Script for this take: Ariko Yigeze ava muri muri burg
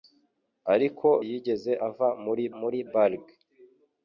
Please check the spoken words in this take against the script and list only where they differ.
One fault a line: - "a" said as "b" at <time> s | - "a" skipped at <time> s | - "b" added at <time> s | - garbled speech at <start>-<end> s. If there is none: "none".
none